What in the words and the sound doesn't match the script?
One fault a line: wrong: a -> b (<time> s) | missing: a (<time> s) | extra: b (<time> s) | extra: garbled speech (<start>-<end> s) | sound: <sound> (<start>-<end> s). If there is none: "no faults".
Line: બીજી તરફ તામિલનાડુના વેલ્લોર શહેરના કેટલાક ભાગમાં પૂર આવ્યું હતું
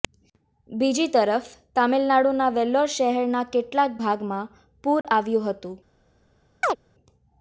sound: dropout (5.0-5.0 s)
sound: chirp (6.6-6.8 s)